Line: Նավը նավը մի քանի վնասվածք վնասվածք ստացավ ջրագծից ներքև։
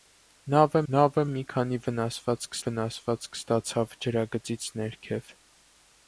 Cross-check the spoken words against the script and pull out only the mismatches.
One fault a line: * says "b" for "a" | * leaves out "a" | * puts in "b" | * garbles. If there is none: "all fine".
all fine